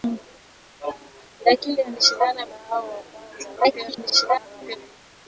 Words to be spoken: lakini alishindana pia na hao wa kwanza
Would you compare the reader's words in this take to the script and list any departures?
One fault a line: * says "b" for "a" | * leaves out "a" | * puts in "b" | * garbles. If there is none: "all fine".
* leaves out "pia"
* garbles